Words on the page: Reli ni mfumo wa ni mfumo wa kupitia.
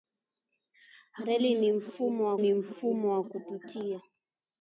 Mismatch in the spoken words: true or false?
false